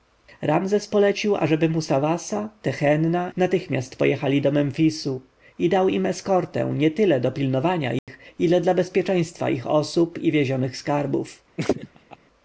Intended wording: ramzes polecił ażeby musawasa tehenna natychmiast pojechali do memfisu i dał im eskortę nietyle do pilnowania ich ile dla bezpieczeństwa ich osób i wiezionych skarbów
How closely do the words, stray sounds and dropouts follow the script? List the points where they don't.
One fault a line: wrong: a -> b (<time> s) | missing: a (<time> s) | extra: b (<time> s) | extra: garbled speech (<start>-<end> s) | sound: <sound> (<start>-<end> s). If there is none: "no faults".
sound: dropout (8.0-8.1 s)
sound: laugh (11.6-12.2 s)